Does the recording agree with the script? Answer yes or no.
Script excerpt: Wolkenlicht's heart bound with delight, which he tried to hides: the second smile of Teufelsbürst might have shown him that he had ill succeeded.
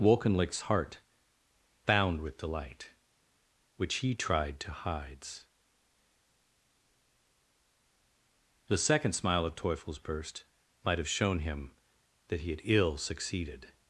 yes